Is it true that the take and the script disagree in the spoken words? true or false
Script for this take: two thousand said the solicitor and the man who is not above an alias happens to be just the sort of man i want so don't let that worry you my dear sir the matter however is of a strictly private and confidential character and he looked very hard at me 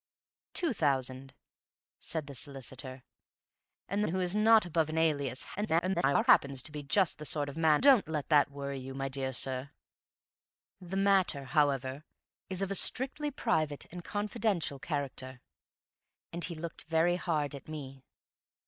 true